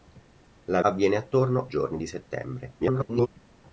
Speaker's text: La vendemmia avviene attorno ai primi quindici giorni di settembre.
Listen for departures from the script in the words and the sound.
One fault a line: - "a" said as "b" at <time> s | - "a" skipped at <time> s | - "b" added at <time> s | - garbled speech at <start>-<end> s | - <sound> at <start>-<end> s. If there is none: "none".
- "vendemmia" skipped at 0.8 s
- "ai primi quindici" skipped at 1.7 s
- garbled speech at 2.8-3.3 s